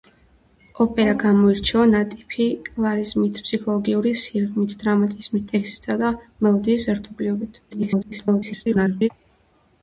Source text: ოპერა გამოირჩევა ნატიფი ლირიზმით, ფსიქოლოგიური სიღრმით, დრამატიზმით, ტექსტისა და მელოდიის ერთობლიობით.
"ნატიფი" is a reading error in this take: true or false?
false